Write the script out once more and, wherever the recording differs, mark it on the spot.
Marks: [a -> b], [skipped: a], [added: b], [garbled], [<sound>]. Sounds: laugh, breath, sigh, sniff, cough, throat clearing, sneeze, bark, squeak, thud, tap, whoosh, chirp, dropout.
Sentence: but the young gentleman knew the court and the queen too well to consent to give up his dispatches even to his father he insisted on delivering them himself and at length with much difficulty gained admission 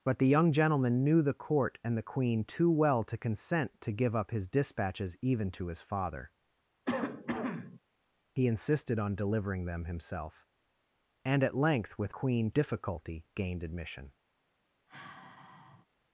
but the young gentleman knew the court and the queen too well to consent to give up his dispatches even to his father [cough] he insisted on delivering them himself and at length with [much -> queen] difficulty gained admission [sigh]